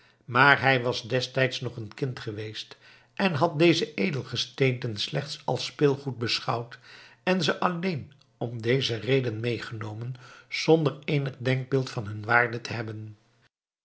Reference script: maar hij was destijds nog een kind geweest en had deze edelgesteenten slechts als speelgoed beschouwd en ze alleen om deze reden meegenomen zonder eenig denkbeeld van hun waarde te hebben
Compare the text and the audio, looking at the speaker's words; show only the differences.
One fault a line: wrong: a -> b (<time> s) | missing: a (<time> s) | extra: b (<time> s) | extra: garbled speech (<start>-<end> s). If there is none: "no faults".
no faults